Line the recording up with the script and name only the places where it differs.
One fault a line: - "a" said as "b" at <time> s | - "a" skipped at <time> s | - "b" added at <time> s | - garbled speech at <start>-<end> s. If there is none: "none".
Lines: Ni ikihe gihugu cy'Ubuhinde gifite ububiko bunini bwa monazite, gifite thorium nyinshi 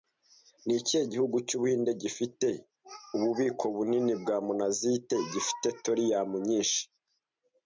none